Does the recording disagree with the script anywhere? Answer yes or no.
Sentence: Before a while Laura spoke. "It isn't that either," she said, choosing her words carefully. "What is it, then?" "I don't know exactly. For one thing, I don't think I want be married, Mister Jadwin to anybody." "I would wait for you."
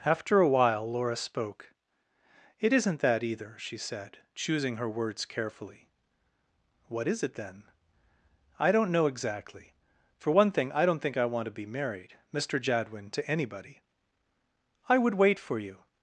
yes